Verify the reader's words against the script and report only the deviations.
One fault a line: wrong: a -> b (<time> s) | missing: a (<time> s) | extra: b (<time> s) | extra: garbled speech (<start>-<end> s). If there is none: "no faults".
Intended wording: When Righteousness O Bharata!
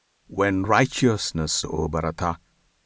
no faults